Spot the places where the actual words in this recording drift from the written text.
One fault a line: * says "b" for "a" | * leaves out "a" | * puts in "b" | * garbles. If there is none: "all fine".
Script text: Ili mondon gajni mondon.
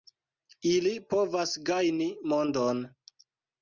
* says "povas" for "mondon"